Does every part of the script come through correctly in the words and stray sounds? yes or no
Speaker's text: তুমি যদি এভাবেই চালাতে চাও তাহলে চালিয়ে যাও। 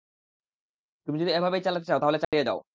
no